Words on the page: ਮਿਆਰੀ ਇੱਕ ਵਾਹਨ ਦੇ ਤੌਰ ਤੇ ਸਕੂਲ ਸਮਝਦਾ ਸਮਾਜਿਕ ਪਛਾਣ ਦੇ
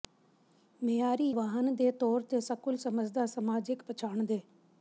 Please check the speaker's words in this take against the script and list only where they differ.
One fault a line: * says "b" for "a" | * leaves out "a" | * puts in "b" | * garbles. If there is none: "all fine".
* leaves out "ਇੱਕ"